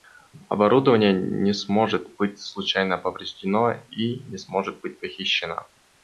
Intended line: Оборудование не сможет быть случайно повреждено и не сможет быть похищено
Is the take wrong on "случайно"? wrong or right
right